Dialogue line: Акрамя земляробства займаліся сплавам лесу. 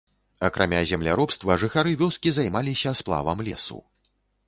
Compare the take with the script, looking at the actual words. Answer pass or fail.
fail